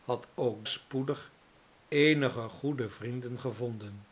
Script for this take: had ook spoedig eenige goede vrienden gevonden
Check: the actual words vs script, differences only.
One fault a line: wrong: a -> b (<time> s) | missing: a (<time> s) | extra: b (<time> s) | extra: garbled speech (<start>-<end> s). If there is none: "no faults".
no faults